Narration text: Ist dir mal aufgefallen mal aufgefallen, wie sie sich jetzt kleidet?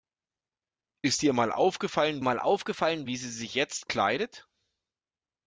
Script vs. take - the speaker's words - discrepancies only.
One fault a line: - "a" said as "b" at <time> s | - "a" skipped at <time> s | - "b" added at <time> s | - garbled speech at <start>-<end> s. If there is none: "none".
none